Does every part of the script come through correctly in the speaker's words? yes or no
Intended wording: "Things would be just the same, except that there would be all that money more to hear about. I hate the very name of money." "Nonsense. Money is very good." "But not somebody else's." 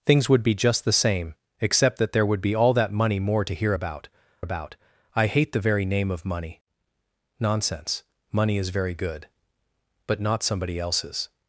no